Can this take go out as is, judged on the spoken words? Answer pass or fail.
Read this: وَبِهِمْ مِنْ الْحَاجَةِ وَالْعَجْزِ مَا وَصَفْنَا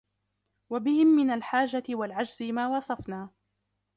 pass